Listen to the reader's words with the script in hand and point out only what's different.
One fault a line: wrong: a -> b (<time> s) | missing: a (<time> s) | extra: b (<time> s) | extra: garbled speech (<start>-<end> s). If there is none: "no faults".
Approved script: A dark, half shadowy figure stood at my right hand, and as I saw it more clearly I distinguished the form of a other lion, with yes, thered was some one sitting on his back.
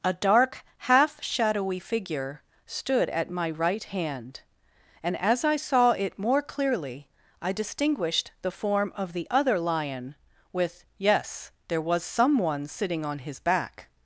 wrong: a -> the (9.1 s)
wrong: thered -> there (11.7 s)